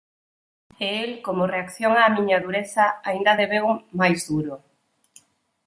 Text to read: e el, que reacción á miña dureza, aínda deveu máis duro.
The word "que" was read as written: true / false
false